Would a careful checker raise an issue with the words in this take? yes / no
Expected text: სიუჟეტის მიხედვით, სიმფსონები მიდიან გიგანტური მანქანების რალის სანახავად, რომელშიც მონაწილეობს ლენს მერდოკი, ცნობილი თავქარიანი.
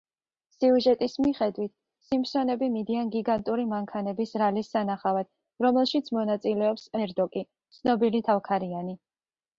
yes